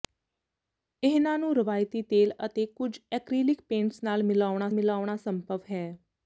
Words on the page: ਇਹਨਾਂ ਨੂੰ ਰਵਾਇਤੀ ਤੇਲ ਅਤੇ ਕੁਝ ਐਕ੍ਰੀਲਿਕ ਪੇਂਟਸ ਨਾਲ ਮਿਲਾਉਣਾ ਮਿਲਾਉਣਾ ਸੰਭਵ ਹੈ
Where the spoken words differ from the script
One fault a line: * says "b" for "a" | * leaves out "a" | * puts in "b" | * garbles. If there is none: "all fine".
all fine